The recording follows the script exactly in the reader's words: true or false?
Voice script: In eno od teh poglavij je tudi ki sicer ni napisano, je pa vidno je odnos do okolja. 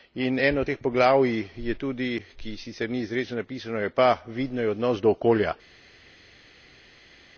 false